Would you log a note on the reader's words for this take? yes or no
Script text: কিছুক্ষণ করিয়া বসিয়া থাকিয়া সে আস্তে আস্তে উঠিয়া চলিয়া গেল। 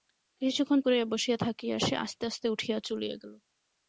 no